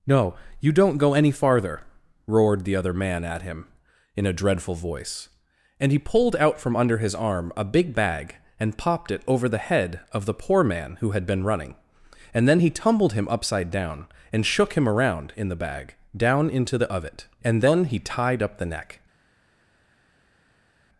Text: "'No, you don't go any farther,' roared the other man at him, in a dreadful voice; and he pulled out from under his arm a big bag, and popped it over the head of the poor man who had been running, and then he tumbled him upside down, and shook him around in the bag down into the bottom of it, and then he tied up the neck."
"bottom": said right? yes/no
no